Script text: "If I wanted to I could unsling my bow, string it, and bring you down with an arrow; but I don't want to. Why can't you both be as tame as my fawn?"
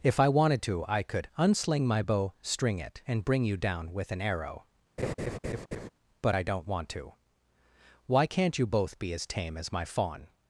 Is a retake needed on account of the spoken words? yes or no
no